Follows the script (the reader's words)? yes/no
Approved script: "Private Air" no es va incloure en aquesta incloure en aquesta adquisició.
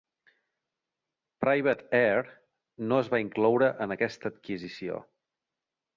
no